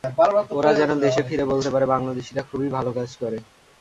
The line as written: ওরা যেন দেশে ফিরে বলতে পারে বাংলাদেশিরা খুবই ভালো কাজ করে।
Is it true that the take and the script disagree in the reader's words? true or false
false